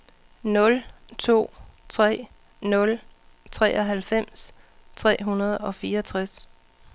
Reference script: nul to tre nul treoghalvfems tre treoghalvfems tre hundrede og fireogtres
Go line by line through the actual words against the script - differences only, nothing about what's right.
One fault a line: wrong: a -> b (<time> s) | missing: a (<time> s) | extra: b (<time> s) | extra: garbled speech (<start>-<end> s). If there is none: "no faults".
missing: treoghalvfems tre (5.2 s)